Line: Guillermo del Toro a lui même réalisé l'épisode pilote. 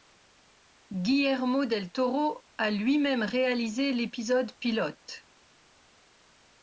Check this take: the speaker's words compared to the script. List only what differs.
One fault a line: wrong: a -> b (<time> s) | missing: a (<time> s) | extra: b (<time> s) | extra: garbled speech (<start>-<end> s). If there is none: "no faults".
no faults